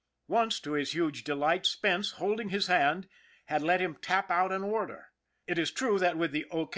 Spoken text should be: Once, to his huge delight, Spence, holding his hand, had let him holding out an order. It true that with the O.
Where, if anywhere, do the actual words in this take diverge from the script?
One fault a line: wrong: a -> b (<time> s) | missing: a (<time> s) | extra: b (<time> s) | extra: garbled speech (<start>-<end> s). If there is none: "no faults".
wrong: holding -> tap (4.0 s)
extra: is (5.6 s)